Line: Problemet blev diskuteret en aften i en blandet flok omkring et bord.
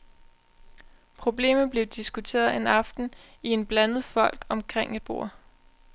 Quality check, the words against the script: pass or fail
pass